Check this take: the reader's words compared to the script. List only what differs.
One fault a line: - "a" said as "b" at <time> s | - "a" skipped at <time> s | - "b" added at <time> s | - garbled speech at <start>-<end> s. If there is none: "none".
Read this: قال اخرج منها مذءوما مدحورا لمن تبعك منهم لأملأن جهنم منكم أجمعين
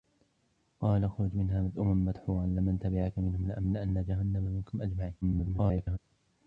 - garbled speech at 5.2-6.0 s